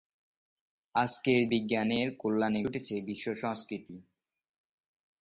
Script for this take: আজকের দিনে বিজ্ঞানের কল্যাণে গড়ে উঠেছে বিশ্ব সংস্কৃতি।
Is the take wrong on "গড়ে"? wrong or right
wrong